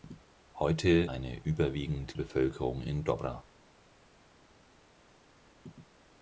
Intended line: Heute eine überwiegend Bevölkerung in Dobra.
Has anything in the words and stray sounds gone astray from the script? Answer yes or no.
no